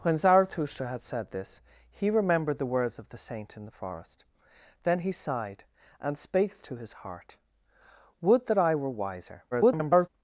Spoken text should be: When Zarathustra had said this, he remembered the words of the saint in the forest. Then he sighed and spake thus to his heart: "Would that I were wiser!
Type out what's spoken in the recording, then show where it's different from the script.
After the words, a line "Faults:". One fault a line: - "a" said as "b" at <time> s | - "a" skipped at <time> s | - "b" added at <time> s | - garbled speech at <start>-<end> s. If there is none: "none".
When Zarathustra had said this, he remembered the words of the saint in the forest. Then he sighed and spake to his heart: "Would that I were wiser! [garbled]
Faults:
- "thus" skipped at 6.6 s
- garbled speech at 9.5-10.1 s